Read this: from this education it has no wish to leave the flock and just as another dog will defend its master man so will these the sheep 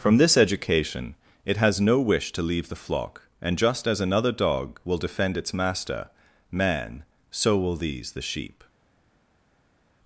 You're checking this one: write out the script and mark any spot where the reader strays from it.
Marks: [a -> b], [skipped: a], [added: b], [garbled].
from this education it has no wish to leave the flock and just as another dog will defend its master man so will these the sheep